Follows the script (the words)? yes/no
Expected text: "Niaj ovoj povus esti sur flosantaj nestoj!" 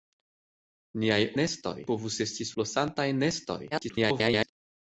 no